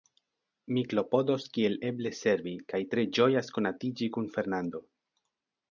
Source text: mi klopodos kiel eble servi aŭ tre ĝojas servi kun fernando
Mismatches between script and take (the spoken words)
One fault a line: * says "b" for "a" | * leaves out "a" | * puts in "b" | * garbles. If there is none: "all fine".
* says "kaj" for "aŭ"
* says "konatiĝi" for "servi"